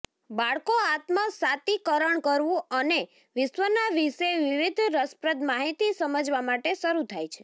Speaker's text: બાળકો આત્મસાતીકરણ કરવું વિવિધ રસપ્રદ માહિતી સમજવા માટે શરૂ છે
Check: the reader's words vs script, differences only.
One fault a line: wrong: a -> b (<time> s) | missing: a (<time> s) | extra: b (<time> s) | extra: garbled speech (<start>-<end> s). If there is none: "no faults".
extra: અને વિશ્વના વિશે (2.8 s)
extra: થાય (7.1 s)